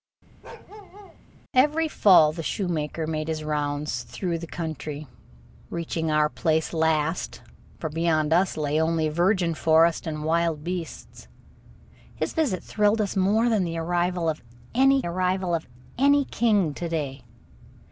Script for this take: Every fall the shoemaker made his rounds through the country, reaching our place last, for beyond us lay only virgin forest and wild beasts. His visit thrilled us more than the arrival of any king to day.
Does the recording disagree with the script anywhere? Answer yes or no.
yes